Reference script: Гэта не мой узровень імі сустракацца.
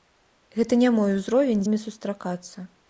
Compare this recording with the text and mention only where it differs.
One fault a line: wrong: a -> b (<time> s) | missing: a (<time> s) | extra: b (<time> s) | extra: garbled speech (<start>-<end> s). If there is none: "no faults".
no faults